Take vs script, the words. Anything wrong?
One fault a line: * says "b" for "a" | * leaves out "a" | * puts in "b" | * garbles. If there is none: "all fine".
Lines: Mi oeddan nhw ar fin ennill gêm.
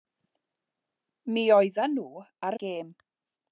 * leaves out "fin ennill"